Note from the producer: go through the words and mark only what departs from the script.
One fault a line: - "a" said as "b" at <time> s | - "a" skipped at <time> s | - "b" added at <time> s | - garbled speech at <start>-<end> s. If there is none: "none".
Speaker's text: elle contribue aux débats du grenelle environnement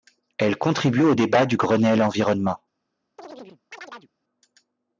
none